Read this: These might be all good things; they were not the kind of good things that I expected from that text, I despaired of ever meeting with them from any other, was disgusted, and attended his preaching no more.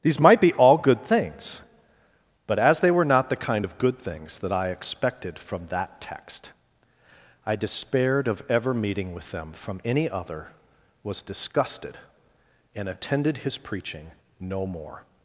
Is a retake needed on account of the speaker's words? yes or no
yes